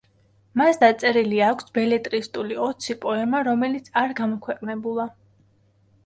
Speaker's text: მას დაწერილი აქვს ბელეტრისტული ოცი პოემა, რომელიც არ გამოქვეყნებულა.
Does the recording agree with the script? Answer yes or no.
yes